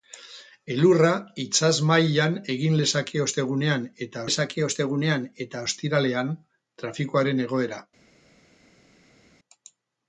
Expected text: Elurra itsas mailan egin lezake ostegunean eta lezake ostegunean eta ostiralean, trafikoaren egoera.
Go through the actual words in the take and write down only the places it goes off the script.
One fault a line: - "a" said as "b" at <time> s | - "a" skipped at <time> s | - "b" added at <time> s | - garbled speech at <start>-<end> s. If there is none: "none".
none